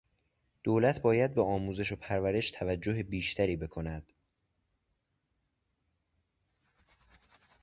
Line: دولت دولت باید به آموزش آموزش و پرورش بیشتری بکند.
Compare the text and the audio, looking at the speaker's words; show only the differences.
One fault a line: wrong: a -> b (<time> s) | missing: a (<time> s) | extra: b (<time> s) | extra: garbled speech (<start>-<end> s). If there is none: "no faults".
missing: دولت (1.0 s)
missing: آموزش (1.9 s)
extra: توجه (2.5 s)